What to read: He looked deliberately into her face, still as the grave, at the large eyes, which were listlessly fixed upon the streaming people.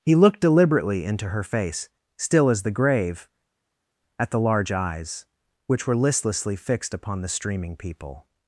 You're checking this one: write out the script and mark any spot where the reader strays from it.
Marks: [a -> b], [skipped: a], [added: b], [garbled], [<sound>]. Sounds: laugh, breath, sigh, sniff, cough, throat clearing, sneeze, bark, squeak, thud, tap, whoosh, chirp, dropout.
He looked deliberately into her face, still as the grave, at the large eyes, which were listlessly fixed upon the streaming people.